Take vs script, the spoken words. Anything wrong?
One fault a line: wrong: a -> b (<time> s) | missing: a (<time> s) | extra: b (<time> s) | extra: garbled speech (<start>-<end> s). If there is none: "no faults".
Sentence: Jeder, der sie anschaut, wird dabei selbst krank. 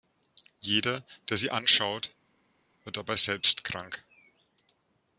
no faults